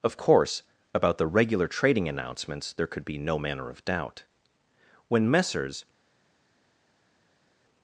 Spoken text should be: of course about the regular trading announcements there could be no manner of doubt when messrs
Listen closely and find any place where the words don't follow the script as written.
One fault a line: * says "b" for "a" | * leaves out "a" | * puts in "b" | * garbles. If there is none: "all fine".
all fine